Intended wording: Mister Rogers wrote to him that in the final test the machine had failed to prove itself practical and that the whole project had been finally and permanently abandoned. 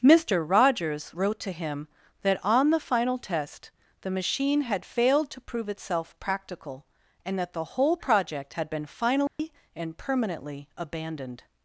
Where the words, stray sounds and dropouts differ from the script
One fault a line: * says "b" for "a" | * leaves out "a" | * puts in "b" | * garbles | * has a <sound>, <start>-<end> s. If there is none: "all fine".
* says "on" for "in"
* has a dropout, 9.3-9.4 s